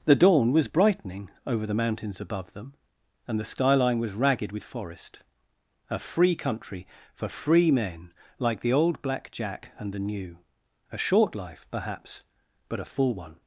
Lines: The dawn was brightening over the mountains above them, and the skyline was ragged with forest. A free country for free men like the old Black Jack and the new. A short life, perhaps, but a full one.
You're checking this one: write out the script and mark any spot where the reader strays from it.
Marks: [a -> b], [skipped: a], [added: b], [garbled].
The dawn was brightening over the mountains above them, and the skyline was ragged with forest. A free country for free men like the old Black Jack and the new. A short life, perhaps, but a full one.